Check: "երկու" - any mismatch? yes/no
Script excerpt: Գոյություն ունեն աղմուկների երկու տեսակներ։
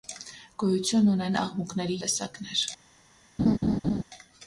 yes